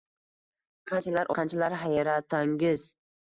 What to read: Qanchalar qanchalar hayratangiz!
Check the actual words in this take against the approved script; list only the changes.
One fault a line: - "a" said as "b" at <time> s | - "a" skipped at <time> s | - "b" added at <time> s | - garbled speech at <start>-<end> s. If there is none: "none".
none